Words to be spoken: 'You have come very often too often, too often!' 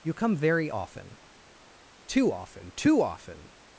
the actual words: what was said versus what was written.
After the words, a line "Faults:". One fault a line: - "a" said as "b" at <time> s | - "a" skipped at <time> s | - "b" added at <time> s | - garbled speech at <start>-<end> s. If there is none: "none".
'You come very often too often, too often!'
Faults:
- "have" skipped at 0.1 s